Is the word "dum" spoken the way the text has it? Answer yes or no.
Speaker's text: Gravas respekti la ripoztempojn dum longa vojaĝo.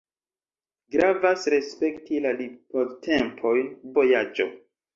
no